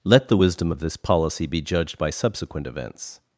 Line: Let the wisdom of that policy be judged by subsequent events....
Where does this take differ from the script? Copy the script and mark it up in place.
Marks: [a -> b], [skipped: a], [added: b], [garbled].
Let the wisdom of [that -> this] policy be judged by subsequent events....